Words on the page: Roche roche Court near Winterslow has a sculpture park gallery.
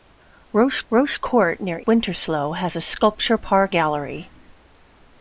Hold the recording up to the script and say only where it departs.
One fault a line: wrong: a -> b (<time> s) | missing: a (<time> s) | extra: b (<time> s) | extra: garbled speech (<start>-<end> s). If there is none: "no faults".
no faults